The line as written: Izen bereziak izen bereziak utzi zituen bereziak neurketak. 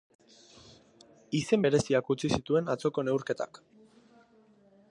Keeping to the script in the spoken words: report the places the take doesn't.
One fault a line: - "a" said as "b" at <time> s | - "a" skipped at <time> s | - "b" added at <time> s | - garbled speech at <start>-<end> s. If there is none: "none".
- "izen bereziak" skipped at 2.1 s
- "bereziak" said as "atzoko" at 2.7 s